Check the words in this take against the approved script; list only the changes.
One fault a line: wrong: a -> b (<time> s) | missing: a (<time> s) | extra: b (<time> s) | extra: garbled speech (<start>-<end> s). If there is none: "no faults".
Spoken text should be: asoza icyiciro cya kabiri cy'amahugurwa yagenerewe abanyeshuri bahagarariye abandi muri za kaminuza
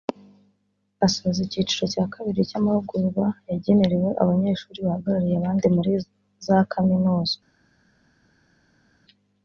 no faults